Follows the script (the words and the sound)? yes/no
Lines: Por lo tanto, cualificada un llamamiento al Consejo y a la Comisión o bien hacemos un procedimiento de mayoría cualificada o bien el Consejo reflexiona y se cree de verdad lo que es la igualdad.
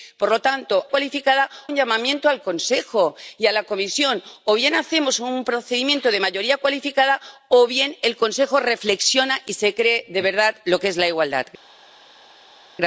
yes